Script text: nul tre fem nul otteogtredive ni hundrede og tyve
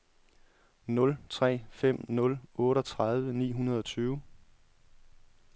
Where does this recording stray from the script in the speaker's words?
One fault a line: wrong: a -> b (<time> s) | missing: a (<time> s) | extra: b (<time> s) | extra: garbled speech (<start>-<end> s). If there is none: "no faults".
no faults